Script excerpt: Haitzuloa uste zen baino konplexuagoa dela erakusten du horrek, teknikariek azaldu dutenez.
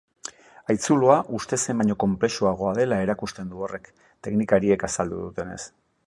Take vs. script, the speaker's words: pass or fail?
pass